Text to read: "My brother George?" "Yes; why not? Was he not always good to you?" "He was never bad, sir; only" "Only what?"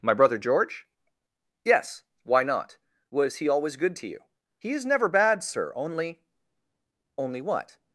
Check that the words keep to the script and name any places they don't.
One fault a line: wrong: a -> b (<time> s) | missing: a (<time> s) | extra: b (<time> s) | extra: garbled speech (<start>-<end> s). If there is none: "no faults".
missing: not (3.5 s)
wrong: was -> is (4.7 s)